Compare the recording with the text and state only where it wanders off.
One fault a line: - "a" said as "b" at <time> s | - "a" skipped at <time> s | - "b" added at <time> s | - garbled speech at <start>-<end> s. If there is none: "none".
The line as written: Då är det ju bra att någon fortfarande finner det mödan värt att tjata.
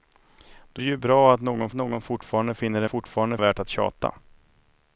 - "är" skipped at 0.8 s
- "någon" added at 1.7 s
- "mödan" said as "fortfarande" at 2.8 s